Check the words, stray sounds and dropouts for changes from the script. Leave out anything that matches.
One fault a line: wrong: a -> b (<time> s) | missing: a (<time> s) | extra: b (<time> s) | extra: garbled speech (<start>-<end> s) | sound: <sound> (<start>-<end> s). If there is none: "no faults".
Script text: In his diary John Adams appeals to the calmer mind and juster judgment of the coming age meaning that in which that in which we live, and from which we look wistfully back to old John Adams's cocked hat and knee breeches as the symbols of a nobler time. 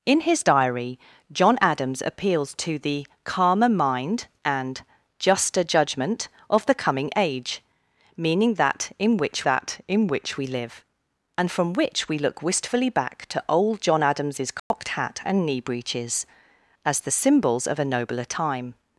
sound: dropout (14.6-14.7 s)